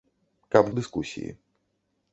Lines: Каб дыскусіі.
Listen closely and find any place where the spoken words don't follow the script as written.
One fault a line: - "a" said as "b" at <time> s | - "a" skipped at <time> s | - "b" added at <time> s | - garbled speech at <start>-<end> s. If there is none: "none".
none